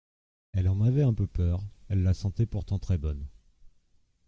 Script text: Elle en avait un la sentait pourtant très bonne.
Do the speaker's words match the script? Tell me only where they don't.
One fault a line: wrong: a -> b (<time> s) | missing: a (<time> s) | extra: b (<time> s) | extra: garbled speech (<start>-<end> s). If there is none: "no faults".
extra: peu peur elle (1.1 s)